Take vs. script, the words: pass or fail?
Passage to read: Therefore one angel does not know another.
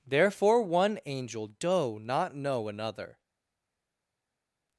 fail